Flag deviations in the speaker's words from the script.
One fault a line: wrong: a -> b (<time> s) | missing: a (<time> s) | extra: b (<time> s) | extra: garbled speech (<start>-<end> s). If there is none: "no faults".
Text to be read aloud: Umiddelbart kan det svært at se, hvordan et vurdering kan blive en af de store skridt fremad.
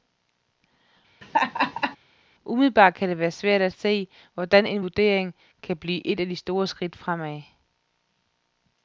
extra: være (3.2 s)
wrong: et -> en (4.7 s)
wrong: en -> et (6.1 s)